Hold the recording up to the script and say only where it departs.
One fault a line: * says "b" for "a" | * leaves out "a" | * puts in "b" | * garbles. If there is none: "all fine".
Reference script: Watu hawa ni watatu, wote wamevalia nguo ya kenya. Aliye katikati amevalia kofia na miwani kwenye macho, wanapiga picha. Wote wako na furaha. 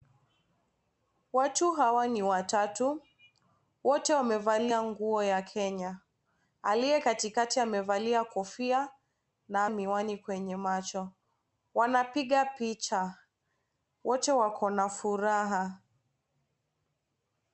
all fine